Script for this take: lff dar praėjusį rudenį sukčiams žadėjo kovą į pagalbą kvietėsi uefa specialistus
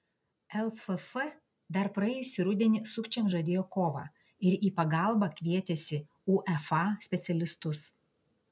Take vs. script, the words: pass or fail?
fail